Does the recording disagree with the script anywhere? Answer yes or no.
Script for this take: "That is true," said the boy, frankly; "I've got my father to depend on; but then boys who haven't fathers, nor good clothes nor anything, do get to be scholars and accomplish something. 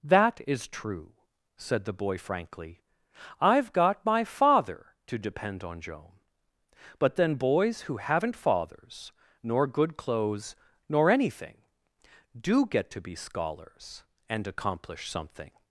yes